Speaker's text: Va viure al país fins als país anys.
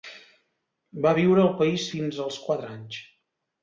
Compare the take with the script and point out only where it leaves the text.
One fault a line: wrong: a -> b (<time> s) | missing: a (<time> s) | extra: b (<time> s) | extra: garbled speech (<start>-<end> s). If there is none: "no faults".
wrong: país -> quatre (2.5 s)